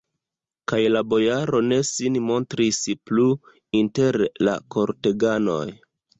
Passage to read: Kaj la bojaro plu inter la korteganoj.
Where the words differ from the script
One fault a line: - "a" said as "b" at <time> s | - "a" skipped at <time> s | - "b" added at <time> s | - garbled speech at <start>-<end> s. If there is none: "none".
- "ne sin montris" added at 1.6 s